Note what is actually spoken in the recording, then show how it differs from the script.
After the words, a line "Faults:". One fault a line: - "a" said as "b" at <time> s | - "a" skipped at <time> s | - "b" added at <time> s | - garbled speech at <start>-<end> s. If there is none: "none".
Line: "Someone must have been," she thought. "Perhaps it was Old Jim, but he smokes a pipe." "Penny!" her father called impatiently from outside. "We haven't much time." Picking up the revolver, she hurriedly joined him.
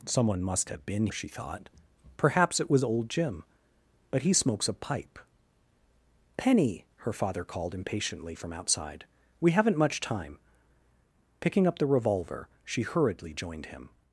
"Someone must have been," she thought. "Perhaps it was Old Jim, but he smokes a pipe." "Penny!" her father called impatiently from outside. "We haven't much time." Picking up the revolver, she hurriedly joined him.
Faults:
none